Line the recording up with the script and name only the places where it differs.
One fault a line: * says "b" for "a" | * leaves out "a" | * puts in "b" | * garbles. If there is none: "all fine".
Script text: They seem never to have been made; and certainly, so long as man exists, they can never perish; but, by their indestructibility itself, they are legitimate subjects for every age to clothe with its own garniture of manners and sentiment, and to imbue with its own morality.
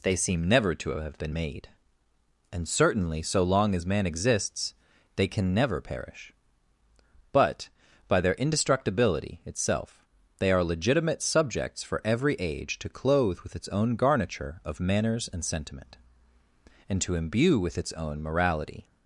all fine